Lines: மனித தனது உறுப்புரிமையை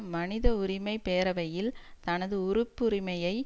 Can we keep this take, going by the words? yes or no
no